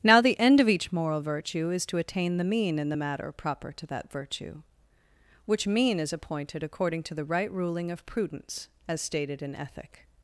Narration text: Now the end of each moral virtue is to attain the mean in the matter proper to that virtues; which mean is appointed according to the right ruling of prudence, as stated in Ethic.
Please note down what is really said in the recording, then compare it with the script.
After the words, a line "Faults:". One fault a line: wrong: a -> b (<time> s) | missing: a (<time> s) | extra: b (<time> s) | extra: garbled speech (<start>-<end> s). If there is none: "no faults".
Now the end of each moral virtue is to attain the mean in the matter proper to that virtue; which mean is appointed according to the right ruling of prudence, as stated in Ethic.
Faults:
wrong: virtues -> virtue (4.1 s)